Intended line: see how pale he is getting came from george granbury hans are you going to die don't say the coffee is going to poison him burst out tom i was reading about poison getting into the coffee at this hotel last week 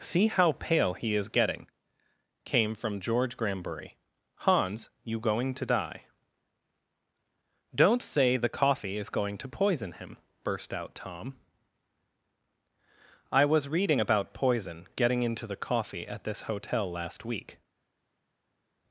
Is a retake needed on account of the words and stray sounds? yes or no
yes